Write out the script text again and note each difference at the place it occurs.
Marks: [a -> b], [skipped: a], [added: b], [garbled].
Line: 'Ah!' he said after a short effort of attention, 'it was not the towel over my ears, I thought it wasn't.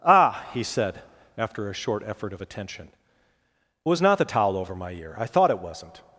'Ah!' he said after a short effort of attention, 'it was not the towel over my [ears, -> ear] I thought it wasn't.